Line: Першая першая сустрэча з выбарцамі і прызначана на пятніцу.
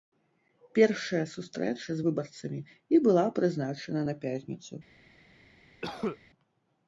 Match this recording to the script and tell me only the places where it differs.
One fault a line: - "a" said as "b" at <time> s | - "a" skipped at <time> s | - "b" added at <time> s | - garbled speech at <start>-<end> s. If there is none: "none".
- "першая" skipped at 1.2 s
- "была" added at 3.1 s